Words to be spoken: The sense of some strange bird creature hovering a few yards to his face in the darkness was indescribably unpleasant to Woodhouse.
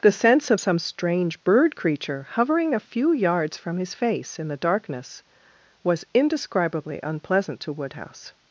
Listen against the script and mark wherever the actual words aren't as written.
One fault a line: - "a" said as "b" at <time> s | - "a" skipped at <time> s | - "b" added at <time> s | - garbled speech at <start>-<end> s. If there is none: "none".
- "to" said as "from" at 3.6 s